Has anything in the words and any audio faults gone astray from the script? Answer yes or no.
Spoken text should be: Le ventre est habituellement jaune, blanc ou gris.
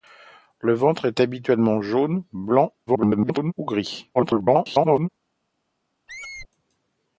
yes